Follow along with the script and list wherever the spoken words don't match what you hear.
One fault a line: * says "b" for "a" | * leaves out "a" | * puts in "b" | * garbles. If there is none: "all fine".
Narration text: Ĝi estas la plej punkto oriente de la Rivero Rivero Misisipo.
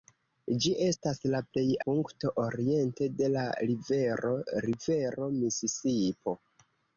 all fine